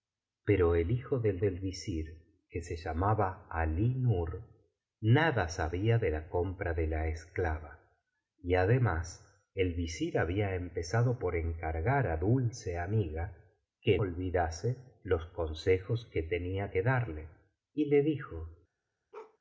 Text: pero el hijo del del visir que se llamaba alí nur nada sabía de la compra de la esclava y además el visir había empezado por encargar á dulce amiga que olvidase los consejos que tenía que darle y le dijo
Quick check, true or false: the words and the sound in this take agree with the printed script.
false